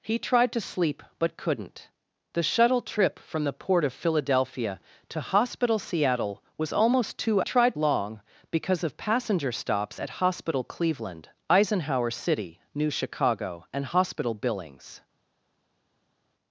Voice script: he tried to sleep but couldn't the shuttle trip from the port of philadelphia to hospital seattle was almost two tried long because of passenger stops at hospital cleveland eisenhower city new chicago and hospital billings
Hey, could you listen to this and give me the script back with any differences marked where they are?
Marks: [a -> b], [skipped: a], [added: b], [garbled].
he tried to sleep but couldn't the shuttle trip from the port of philadelphia to hospital seattle was almost two tried long because of passenger stops at hospital cleveland eisenhower city new chicago and hospital billings